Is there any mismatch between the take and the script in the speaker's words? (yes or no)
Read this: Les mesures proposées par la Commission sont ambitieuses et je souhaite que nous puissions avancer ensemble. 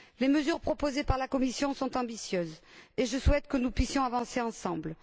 no